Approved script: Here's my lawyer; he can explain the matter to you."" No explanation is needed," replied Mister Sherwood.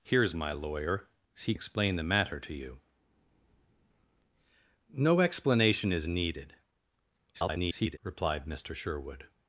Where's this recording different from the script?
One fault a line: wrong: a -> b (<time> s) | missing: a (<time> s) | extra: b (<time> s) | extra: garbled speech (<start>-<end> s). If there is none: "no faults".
missing: can (1.5 s)
extra: garbled speech (7.3-8.0 s)